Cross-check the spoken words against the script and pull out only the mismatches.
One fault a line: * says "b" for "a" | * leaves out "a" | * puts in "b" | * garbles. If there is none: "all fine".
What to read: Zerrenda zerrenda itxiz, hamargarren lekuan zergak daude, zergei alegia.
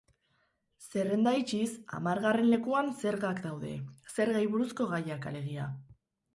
* leaves out "zerrenda"
* puts in "buruzko gaiak"